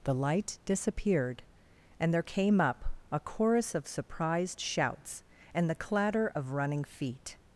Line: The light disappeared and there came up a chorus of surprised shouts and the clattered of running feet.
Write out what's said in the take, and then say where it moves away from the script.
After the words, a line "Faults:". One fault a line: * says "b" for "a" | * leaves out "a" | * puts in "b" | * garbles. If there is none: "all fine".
The light disappeared and there came up a chorus of surprised shouts and the clatter of running feet.
Faults:
* says "clatter" for "clattered"